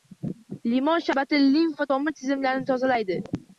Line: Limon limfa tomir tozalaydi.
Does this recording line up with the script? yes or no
no